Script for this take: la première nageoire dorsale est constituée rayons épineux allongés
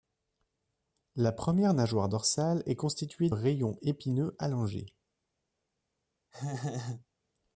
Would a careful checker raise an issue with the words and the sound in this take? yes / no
yes